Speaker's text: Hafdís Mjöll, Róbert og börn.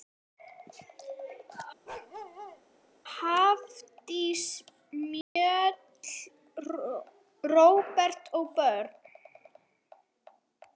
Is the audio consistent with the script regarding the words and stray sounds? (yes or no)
no